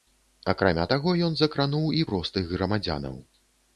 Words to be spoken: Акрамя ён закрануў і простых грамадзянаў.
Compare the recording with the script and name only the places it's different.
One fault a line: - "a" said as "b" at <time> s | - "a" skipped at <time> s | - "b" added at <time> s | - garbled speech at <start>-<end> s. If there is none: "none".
- "таго" added at 0.9 s